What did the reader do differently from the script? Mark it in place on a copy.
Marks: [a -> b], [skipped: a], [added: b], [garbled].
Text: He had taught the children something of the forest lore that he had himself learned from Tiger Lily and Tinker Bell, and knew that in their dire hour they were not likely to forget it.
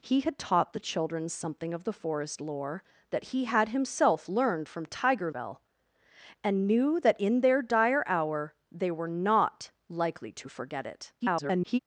He had taught the children something of the forest lore that he had himself learned from Tiger [skipped: Lily and Tinker] Bell, and knew that in their dire hour they were not likely to forget it. [garbled]